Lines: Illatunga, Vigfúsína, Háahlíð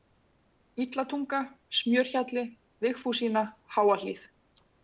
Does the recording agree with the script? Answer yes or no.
no